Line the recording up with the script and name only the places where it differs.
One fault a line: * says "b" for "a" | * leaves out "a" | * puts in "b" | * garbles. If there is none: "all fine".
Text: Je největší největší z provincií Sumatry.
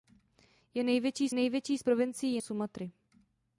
all fine